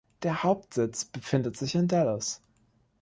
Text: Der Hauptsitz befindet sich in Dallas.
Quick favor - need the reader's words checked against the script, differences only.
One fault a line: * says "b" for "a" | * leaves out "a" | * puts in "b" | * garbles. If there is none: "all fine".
all fine